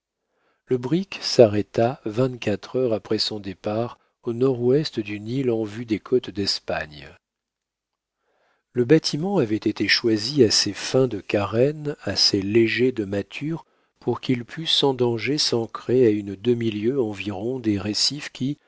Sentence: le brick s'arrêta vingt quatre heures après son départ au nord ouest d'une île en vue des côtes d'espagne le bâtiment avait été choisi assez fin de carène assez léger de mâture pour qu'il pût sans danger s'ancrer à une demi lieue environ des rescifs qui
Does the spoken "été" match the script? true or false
true